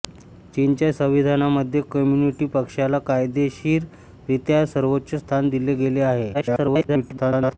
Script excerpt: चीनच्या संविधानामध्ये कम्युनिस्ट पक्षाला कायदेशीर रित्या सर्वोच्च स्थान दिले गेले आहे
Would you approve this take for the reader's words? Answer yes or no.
no